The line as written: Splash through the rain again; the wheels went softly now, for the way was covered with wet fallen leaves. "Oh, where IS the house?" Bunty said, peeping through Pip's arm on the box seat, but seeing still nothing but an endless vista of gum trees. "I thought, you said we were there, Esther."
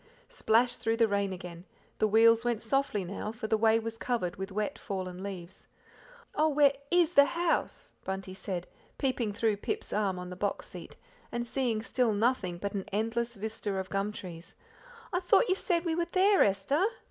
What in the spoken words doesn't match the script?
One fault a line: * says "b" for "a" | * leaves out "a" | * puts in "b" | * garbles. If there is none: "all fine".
* says "and" for "but"